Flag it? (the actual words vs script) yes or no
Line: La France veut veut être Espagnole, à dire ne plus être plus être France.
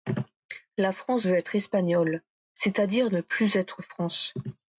yes